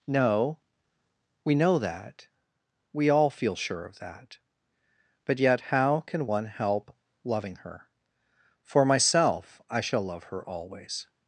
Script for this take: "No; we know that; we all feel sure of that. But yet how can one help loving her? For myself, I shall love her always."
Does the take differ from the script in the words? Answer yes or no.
no